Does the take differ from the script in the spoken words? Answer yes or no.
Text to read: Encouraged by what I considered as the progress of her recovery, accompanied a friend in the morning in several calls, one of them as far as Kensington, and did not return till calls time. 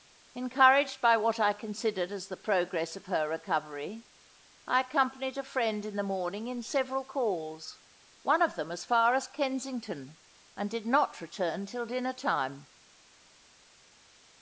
yes